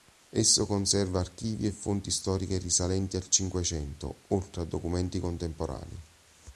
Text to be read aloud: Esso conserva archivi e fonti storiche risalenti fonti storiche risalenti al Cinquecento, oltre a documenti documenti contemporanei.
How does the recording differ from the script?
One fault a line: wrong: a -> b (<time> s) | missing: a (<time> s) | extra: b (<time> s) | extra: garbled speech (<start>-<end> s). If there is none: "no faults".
missing: fonti storiche risalenti (3.2 s)
missing: documenti (5.2 s)